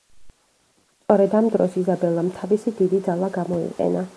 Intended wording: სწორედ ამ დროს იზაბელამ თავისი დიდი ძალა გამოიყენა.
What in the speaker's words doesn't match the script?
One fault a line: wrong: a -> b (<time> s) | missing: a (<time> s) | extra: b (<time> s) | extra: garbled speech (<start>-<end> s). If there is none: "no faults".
no faults